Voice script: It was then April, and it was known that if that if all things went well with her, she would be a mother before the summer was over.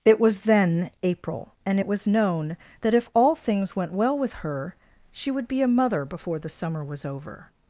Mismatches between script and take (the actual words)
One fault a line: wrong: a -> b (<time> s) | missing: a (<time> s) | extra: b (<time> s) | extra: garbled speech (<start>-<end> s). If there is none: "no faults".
missing: that if (3.1 s)